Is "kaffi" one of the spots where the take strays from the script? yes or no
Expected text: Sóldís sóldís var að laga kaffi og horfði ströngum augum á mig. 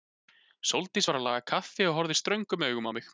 no